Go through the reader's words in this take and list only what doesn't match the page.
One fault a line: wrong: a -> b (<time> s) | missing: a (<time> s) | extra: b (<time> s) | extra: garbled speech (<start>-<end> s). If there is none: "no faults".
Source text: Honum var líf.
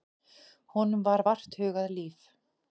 extra: vart hugað (1.3 s)